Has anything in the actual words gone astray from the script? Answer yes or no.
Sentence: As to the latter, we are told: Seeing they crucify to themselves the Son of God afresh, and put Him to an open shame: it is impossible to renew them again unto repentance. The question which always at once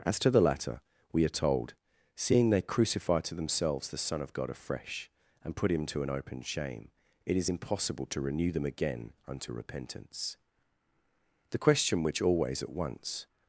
no